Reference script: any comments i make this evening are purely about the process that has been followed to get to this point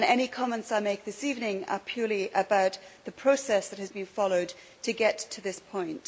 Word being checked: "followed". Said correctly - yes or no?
yes